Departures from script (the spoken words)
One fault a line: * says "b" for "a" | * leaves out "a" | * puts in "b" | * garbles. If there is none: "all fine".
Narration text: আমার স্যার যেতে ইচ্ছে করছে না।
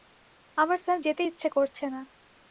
all fine